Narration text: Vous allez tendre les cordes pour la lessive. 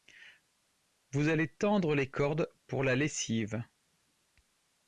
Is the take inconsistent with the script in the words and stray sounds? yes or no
no